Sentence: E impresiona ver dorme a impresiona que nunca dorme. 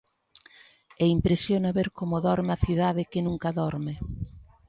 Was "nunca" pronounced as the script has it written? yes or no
yes